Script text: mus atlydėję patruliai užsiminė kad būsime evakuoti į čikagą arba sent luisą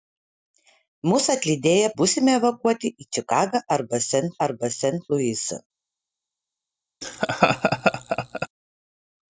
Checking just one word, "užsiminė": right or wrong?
wrong